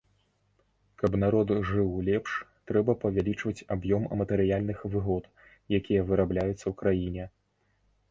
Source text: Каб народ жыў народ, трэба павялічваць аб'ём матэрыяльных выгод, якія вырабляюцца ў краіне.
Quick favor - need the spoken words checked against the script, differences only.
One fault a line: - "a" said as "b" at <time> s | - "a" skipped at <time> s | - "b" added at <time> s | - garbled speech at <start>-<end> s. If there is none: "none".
- "народ" said as "лепш" at 2.1 s